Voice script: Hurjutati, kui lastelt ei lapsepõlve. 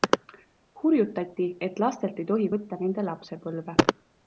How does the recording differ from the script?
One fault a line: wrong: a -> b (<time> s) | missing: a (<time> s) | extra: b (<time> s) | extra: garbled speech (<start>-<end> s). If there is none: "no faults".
wrong: kui -> et (1.7 s)
extra: tohi võtta nende (2.3 s)